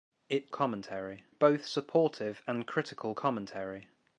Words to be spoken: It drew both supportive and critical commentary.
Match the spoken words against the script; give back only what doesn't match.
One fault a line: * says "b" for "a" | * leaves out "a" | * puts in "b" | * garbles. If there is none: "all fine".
* says "commentary" for "drew"